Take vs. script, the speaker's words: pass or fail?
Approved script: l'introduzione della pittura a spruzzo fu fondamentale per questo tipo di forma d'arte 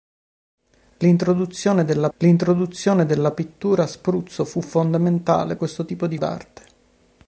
fail